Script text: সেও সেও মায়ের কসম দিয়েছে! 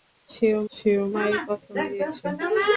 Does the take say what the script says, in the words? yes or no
yes